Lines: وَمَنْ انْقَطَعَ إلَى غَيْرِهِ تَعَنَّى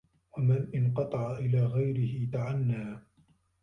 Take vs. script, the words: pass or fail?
pass